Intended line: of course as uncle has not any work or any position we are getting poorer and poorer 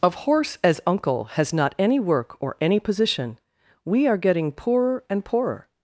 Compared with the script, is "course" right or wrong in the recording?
wrong